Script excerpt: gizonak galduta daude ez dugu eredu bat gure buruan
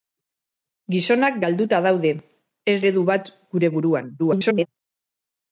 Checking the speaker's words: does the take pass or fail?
fail